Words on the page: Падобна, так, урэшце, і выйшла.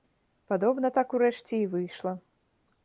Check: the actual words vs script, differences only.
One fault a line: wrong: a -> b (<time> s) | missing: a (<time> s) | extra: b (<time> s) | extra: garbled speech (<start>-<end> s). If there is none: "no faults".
no faults